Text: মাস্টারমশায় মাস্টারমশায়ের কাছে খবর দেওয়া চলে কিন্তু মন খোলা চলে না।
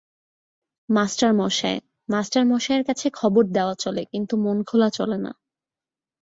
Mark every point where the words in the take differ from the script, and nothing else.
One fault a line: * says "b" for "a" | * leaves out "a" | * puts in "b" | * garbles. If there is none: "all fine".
all fine